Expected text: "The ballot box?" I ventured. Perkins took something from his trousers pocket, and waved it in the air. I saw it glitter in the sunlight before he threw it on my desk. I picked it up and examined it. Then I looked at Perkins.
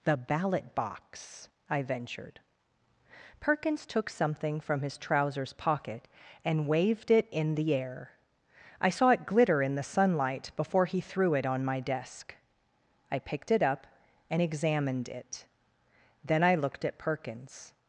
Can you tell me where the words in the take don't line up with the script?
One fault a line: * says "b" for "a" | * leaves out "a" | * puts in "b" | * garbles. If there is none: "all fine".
all fine